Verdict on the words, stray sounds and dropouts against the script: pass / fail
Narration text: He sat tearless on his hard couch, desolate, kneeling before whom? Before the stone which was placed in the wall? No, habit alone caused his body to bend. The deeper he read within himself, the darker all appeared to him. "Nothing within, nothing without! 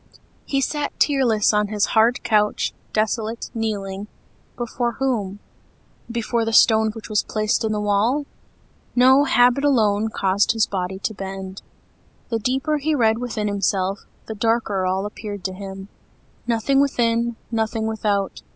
pass